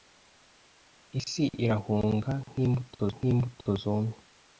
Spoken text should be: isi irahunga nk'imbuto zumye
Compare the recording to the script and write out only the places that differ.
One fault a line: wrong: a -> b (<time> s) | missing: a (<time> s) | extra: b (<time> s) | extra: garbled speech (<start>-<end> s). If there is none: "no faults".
extra: nk'imbuto (3.2 s)